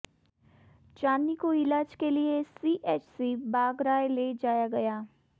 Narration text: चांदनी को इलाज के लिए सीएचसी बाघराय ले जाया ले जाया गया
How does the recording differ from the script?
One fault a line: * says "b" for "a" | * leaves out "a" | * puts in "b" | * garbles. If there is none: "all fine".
* leaves out "ले जाया"